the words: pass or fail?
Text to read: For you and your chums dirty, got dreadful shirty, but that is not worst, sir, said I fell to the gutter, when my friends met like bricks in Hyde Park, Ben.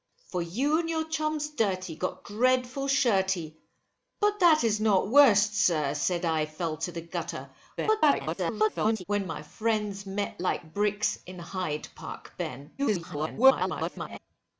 fail